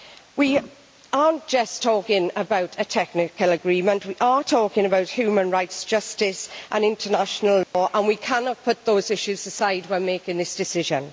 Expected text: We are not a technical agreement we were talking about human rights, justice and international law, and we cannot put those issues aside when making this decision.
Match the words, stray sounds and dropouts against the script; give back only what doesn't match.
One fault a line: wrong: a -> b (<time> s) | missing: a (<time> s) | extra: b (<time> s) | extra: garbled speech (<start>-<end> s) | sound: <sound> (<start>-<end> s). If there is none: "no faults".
extra: just talking about (1.5 s)
wrong: were -> are (4.2 s)
sound: dropout (7.6-7.7 s)